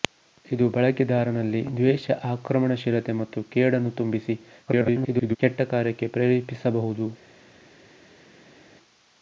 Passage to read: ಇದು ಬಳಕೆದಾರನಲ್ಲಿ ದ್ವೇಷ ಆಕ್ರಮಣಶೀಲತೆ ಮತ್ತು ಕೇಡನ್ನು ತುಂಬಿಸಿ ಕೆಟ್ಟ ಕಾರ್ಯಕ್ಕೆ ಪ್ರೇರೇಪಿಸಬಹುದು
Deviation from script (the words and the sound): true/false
true